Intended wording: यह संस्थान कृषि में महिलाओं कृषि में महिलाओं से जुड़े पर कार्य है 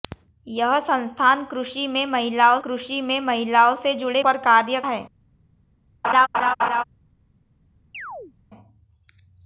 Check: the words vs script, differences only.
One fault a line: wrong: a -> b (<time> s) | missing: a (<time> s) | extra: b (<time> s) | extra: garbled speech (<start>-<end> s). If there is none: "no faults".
no faults